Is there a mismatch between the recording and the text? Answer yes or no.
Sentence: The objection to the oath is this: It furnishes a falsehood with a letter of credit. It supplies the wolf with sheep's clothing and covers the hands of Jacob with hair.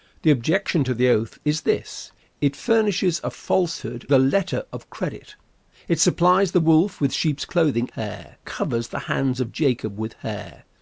yes